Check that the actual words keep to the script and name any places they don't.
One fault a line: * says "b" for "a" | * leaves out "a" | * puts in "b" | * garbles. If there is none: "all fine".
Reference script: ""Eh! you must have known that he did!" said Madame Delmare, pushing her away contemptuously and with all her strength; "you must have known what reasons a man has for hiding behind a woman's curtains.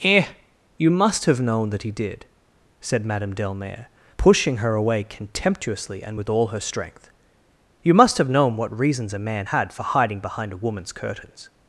* says "had" for "has"